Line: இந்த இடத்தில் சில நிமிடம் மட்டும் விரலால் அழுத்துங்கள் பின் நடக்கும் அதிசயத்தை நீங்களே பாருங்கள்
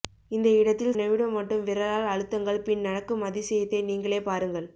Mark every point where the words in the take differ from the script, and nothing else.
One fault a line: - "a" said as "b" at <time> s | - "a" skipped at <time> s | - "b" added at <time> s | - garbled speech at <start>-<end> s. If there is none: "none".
- "சில" skipped at 1.0 s